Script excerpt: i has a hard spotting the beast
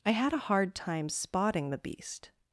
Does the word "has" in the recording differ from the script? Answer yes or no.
yes